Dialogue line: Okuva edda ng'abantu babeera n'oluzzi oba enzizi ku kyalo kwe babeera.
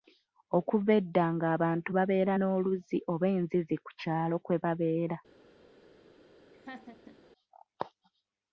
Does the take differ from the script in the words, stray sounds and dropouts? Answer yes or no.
yes